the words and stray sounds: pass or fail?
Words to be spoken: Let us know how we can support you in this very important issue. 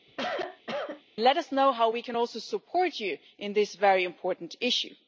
fail